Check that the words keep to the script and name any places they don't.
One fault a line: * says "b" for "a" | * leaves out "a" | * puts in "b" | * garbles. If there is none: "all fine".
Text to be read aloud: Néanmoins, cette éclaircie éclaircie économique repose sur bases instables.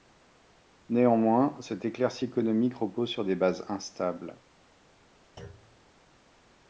* leaves out "éclaircie"
* puts in "des"